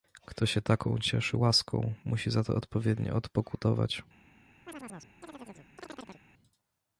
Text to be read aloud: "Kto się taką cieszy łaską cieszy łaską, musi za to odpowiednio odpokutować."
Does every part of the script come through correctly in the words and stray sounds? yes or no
no